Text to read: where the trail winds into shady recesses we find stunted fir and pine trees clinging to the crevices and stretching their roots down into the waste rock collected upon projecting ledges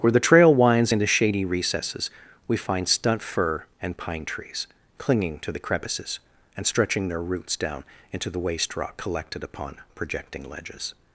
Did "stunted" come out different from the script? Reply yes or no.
yes